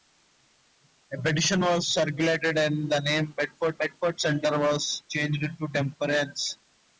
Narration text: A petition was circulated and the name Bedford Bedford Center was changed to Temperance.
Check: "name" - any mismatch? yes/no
no